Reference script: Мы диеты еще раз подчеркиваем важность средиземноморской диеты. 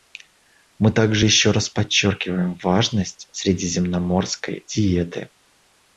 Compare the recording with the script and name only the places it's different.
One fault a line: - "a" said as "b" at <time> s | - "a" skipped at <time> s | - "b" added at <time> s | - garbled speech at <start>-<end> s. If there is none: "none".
- "диеты" said as "также" at 0.9 s